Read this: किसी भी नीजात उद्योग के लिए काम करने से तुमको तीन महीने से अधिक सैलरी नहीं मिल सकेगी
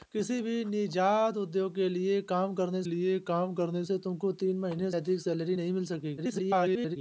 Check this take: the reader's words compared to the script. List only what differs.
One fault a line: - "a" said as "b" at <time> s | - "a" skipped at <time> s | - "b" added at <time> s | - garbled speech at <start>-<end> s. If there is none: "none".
- "लिए काम करने" added at 2.9 s
- "से" skipped at 4.9 s
- garbled speech at 6.2-7.0 s